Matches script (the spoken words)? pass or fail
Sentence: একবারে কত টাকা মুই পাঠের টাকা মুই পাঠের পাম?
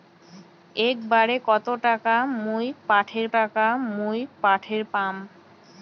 pass